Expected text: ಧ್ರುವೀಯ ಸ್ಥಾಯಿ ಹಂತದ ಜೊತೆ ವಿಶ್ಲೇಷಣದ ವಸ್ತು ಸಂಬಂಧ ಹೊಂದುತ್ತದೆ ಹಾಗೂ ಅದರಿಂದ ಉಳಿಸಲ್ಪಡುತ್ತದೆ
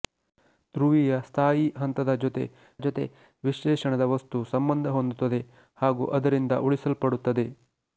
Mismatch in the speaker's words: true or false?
true